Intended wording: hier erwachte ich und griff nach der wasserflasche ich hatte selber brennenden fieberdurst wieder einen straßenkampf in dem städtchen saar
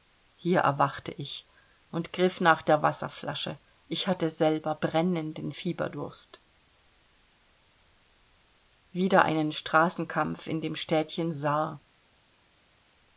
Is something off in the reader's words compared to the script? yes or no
no